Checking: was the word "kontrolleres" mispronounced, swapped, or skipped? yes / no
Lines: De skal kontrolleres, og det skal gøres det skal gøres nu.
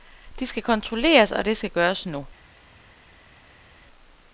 no